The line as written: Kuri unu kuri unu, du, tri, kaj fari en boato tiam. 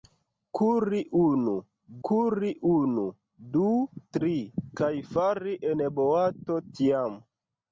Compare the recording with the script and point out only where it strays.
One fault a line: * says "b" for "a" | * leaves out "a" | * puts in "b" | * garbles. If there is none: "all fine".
all fine